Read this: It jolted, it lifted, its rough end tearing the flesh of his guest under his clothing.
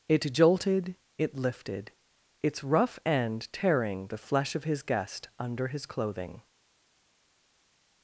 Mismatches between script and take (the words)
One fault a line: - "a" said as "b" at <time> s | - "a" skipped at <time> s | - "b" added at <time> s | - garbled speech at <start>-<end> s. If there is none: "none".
none